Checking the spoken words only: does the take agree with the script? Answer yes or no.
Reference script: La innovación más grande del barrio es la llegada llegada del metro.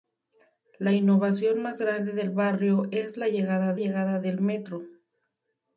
yes